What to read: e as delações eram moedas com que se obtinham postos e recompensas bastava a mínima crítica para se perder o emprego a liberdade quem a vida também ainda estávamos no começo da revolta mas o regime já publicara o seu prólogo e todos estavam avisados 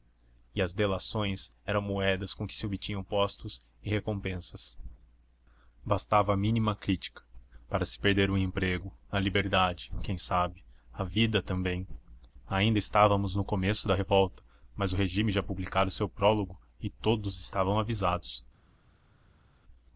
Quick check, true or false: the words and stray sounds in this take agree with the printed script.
false